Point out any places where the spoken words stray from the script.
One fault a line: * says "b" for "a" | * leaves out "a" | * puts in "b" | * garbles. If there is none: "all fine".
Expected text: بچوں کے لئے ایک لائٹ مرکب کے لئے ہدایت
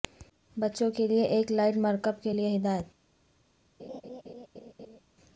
all fine